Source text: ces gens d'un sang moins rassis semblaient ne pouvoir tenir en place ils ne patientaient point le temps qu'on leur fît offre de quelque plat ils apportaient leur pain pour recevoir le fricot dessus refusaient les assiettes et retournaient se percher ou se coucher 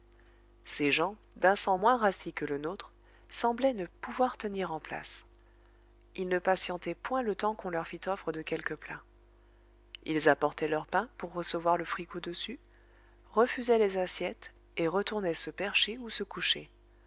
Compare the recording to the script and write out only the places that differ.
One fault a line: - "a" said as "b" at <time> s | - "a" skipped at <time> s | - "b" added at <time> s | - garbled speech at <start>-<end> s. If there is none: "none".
- "que le nôtre" added at 2.3 s